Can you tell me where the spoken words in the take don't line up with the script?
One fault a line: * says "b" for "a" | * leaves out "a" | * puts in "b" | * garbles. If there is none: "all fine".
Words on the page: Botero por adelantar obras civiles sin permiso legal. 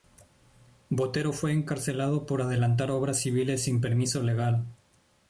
* puts in "fue encarcelado"